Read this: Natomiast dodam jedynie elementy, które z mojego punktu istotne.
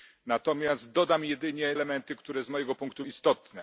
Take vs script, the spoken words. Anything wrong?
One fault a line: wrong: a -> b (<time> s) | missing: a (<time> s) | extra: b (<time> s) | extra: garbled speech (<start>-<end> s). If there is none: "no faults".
no faults